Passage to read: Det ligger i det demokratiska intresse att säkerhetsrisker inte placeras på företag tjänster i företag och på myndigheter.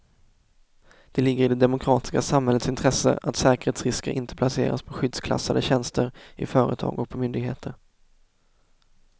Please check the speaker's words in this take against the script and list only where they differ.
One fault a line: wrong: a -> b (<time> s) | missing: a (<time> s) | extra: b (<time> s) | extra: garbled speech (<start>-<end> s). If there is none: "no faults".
extra: samhällets (2.2 s)
wrong: företag -> skyddsklassade (4.9 s)